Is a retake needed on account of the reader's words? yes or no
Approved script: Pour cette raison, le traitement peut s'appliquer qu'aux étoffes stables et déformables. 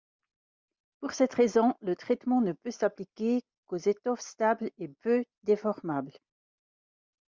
yes